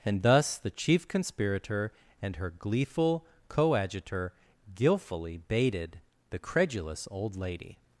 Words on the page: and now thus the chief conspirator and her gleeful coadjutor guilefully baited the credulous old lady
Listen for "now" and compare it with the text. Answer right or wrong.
wrong